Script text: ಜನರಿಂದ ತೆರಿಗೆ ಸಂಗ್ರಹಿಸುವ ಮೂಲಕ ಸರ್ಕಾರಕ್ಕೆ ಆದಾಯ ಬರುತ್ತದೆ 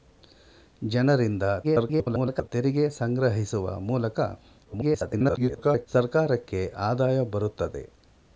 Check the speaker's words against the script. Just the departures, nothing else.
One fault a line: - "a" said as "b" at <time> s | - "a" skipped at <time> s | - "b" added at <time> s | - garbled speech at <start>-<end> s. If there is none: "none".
- garbled speech at 1.6-2.5 s
- garbled speech at 4.6-5.9 s